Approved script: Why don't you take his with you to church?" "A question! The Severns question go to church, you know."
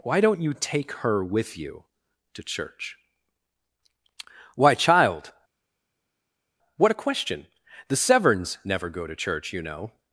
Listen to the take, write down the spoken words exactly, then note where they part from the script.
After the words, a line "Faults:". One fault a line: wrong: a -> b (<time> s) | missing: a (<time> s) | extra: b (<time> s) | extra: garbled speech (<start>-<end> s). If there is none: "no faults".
Why don't you take her with you to church?" "Why, child, what a question! The Severns never go to church, you know."
Faults:
wrong: his -> her (1.0 s)
extra: Why child what (4.5 s)
wrong: question -> never (8.6 s)